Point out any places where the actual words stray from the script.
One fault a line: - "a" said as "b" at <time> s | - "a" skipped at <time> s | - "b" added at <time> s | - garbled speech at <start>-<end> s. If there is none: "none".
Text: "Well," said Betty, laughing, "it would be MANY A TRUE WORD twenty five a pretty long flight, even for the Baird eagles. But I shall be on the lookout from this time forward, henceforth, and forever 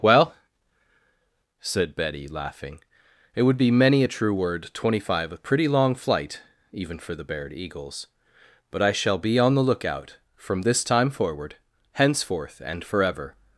none